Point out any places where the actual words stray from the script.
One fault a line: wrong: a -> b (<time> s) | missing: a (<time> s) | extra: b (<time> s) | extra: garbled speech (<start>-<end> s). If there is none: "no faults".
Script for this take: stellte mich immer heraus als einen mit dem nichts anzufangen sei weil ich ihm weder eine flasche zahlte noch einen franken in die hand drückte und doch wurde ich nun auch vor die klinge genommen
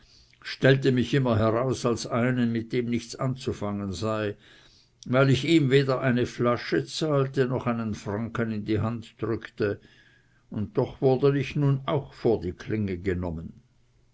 no faults